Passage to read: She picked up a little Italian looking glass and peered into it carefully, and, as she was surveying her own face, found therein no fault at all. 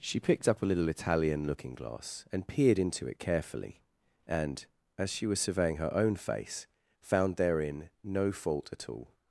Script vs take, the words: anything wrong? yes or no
no